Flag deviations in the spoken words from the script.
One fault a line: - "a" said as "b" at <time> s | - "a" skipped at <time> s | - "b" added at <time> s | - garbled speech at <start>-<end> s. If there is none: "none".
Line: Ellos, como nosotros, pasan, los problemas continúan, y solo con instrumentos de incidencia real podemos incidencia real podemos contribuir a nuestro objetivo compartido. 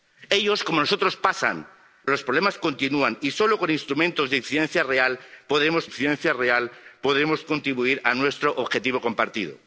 none